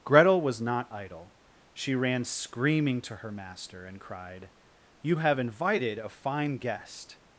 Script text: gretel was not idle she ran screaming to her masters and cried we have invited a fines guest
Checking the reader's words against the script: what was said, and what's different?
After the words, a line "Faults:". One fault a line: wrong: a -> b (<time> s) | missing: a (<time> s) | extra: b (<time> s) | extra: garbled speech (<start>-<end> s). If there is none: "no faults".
gretel was not idle she ran screaming to her master and cried you have invited a fine guest
Faults:
wrong: masters -> master (3.3 s)
wrong: we -> you (5.0 s)
wrong: fines -> fine (6.1 s)